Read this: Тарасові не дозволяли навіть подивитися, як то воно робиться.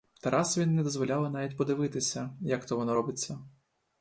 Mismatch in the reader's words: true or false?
false